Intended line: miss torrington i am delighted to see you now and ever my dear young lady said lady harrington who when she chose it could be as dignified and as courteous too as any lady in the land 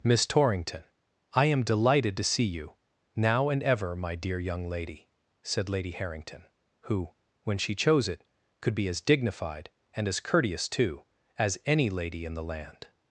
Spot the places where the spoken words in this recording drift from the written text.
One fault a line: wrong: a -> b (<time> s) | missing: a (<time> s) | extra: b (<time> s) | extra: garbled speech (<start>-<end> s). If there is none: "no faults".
no faults